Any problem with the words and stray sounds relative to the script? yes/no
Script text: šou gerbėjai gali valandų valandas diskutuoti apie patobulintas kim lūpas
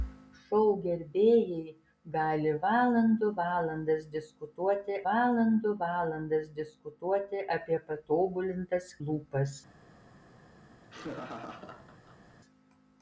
yes